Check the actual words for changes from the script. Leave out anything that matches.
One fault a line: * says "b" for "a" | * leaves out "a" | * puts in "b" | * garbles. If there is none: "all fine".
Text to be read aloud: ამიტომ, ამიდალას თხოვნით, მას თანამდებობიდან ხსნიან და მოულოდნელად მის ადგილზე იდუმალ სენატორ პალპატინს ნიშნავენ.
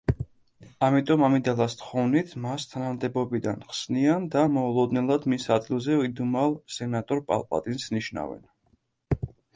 all fine